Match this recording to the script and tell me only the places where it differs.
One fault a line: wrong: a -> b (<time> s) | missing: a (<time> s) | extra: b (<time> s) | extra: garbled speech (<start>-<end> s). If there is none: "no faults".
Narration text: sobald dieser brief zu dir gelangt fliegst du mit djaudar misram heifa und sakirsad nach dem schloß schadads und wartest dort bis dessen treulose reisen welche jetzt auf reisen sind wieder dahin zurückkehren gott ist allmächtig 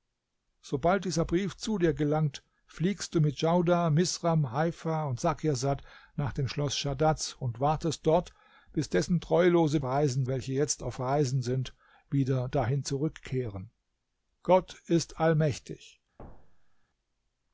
no faults